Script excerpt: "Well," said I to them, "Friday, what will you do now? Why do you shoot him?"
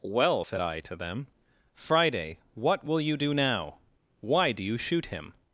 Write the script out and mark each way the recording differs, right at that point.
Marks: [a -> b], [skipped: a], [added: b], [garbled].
"Well," said I to them, "Friday, what will you do now? Why do you shoot him?"